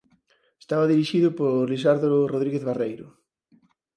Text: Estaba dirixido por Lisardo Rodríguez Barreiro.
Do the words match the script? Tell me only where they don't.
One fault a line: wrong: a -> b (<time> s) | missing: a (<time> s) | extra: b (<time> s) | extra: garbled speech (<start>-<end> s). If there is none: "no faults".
no faults